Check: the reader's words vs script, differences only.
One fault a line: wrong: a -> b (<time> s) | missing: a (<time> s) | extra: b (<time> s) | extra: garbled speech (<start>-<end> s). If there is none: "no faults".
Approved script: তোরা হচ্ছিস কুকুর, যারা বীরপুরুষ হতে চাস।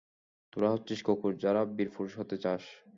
no faults